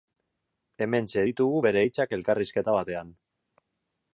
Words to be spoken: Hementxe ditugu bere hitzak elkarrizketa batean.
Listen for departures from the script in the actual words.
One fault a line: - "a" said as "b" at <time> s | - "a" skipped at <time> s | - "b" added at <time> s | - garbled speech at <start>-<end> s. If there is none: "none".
none